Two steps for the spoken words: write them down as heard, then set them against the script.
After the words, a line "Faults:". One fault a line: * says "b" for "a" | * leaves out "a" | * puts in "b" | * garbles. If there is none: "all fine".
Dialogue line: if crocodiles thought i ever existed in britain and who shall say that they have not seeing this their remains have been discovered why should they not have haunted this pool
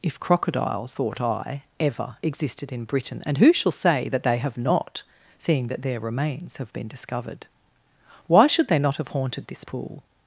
if crocodiles thought i ever existed in britain and who shall say that they have not seeing that their remains have been discovered why should they not have haunted this pool
Faults:
* says "that" for "this"